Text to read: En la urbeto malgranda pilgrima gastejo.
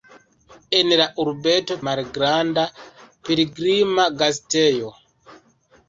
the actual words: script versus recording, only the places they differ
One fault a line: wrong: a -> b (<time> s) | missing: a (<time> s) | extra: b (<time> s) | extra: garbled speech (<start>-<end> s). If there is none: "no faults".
no faults